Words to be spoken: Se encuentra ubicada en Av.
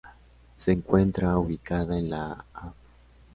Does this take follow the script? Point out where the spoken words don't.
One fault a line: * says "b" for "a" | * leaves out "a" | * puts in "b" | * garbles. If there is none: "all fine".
* puts in "la"